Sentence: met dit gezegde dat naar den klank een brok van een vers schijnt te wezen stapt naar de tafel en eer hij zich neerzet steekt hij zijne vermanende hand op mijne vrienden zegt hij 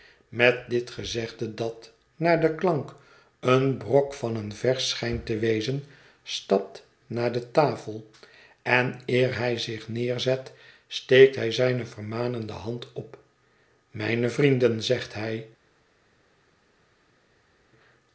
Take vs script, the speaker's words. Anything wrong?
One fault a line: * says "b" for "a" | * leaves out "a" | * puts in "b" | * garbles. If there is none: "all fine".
all fine